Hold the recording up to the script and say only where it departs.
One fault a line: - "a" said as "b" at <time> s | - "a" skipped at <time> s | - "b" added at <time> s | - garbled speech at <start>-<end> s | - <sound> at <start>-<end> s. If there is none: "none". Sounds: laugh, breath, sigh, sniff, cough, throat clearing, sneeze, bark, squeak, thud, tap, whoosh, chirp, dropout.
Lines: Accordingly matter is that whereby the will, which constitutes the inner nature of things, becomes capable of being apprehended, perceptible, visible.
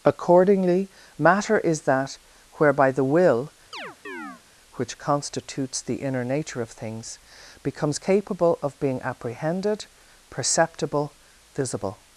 - chirp at 3.7-4.4 s